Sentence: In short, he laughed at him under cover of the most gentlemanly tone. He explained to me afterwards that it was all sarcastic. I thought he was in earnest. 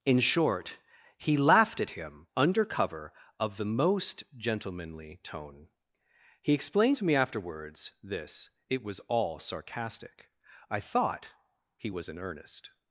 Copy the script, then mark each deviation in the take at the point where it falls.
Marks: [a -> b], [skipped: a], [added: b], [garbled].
In short, he laughed at him under cover of the most gentlemanly tone. He explained to me afterwards [that -> this] it was all sarcastic. I thought he was in earnest.